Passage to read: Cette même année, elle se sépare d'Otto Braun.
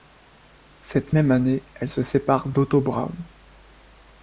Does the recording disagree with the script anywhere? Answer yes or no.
no